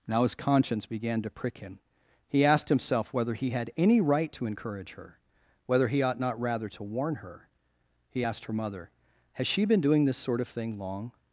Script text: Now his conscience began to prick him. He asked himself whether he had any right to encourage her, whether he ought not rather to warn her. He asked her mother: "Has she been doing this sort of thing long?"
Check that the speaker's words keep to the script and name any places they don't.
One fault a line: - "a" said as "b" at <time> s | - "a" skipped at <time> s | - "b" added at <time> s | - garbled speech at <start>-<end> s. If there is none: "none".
none